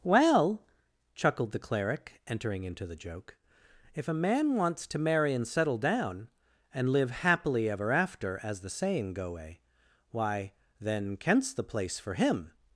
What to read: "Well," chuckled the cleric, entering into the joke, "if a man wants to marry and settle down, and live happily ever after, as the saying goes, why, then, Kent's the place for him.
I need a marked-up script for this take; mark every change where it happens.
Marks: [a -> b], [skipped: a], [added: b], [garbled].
"Well," chuckled the cleric, entering into the joke, "if a man wants to marry and settle down, and live happily ever after, as the saying [goes, -> goe] why, then, Kent's the place for him.